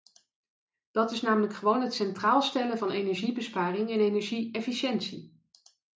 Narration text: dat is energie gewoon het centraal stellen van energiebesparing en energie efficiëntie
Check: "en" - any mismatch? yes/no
no